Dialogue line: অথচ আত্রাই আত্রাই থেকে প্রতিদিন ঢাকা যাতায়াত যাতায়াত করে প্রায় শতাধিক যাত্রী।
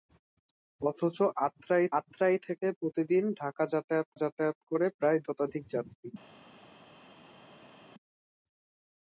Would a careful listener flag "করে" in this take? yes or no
no